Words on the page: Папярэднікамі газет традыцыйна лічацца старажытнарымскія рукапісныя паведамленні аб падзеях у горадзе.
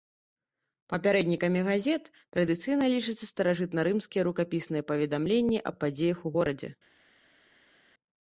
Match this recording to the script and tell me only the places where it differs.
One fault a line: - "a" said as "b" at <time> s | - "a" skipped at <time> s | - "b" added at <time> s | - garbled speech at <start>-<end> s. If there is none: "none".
none